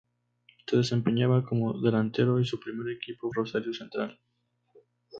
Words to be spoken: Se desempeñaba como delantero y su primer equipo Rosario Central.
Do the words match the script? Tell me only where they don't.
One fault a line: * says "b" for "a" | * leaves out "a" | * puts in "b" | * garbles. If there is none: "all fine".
all fine